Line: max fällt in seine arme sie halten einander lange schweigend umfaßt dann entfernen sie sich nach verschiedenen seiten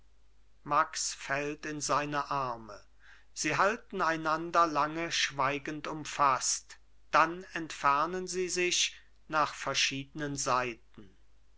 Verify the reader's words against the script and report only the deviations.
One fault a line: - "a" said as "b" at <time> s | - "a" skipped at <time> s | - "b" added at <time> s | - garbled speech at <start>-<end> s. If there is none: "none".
none